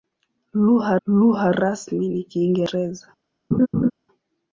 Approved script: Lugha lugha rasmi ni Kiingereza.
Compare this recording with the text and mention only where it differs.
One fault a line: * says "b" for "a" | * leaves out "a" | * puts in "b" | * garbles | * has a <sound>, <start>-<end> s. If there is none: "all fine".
* has a laugh, 3.5-3.9 s